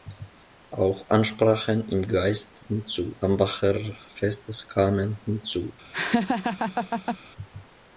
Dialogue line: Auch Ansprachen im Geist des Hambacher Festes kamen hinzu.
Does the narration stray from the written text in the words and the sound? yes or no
yes